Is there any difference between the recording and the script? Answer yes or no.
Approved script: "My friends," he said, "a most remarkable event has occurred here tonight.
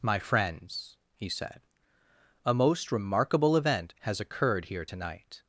no